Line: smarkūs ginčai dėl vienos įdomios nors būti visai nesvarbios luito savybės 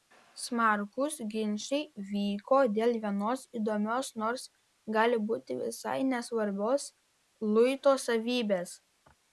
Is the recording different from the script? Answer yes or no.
yes